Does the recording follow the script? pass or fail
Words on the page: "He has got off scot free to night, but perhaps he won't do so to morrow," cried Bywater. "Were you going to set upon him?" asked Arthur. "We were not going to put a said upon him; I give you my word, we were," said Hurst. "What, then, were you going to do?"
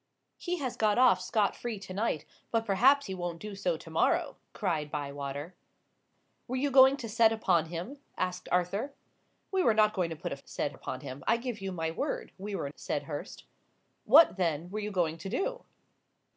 pass